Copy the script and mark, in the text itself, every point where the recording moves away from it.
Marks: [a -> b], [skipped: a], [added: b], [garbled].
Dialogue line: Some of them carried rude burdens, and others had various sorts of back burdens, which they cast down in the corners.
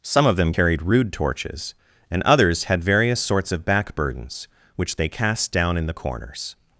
Some of them carried rude [burdens, -> torches] and others had various sorts of back burdens, which they cast down in the corners.